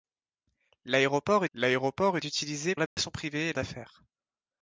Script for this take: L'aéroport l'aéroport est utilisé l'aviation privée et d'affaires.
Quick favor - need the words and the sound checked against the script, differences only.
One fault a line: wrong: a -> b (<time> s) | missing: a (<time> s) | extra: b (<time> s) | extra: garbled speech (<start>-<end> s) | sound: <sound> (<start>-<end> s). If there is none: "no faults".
sound: dropout (2.9-3.0 s)